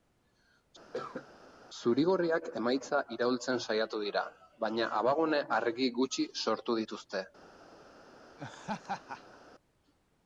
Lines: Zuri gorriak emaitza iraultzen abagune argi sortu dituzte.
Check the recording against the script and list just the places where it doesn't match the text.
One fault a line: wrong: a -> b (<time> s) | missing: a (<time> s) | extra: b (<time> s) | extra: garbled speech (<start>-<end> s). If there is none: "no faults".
extra: saiatu dira baina (3.7 s)
extra: gutxi (6.0 s)